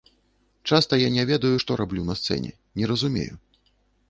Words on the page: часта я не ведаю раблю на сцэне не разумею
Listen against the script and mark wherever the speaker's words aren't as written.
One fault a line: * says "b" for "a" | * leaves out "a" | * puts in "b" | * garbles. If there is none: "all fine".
* puts in "што"